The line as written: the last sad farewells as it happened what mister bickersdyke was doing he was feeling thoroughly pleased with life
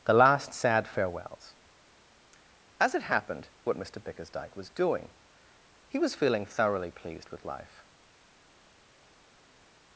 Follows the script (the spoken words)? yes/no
yes